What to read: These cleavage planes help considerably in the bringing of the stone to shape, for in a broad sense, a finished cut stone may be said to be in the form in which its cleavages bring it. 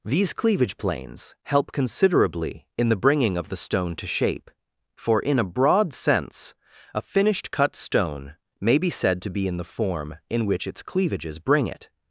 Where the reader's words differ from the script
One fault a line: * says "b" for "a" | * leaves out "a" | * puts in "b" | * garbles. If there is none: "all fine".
all fine